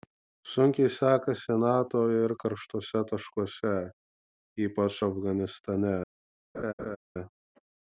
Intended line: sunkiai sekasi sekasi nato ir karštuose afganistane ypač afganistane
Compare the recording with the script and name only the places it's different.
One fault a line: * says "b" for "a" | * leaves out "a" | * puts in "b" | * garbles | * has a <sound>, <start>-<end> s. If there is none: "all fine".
* leaves out "sekasi"
* says "taškuose" for "afganistane"
* has a laugh, 6.5-7.0 s